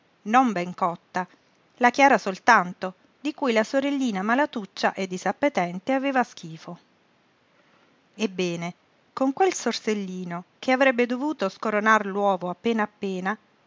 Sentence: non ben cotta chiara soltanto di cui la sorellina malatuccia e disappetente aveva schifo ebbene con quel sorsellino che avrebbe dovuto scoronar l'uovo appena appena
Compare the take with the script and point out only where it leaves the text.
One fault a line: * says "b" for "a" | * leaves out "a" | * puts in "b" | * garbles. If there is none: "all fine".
* puts in "la"